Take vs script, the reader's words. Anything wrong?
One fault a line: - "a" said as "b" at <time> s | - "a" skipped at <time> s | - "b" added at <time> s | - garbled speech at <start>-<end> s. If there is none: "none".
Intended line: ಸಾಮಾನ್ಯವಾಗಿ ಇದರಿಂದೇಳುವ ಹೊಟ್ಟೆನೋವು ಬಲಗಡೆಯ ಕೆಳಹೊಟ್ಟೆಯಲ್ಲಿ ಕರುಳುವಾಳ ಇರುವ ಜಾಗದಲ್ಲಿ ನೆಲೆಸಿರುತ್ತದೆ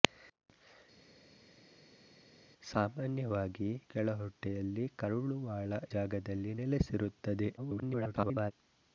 - "ಇದರಿಂದೇಳುವ ಹೊಟ್ಟೆನೋವು ಬಲಗಡೆಯ" skipped at 3.7 s
- "ಇರುವ" skipped at 5.7 s
- garbled speech at 7.6-8.5 s